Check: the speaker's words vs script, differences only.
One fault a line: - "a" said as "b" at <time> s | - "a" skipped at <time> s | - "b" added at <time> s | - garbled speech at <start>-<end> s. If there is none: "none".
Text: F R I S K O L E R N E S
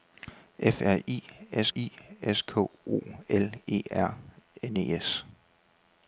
- "I S" added at 1.8 s